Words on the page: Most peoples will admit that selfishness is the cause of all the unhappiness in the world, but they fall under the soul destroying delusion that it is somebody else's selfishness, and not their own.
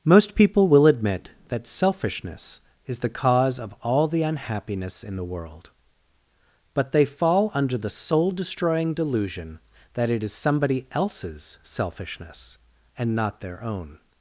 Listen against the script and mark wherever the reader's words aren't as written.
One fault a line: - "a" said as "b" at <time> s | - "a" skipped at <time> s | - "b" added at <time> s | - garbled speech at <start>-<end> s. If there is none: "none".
- "peoples" said as "people" at 0.3 s